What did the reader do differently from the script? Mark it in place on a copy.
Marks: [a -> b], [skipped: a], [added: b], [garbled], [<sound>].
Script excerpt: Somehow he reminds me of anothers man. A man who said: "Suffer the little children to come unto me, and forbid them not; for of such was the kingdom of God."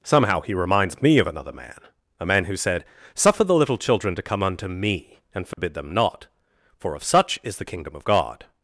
Somehow he reminds me of [anothers -> another] man. A man who said: "Suffer the little children to come unto me, and forbid [dropout] them not; for of such [was -> is] the kingdom of God."